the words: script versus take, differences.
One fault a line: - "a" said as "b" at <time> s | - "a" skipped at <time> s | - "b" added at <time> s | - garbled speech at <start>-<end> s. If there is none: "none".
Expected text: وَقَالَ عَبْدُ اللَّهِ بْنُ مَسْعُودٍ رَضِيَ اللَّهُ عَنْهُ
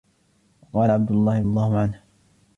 - "بْنُ مَسْعُودٍ رَضِيَ" skipped at 1.4 s